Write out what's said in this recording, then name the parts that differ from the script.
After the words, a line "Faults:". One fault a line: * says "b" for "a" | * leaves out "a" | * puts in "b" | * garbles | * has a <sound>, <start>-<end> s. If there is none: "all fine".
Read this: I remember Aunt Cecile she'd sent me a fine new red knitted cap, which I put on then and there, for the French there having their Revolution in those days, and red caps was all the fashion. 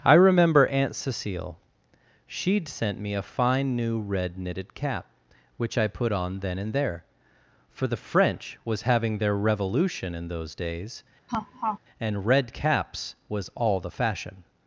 I remember Aunt Cecile she'd sent me a fine new red knitted cap, which I put on then and there, for the French was having their Revolution in those days, and red caps was all the fashion.
Faults:
* says "was" for "there"
* has a laugh, 11.3-11.8 s